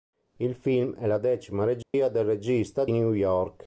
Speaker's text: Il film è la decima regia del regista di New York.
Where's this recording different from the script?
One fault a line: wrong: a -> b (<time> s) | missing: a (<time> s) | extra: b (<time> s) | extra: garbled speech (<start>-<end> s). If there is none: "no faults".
missing: di (2.9 s)